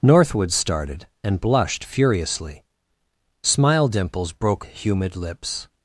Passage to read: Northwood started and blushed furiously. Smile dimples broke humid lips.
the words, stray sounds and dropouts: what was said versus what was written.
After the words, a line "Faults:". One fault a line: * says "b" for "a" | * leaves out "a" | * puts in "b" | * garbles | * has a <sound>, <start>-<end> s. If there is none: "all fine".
Northwood started and blushed furiously. Smile dimples broke humid lips.
Faults:
all fine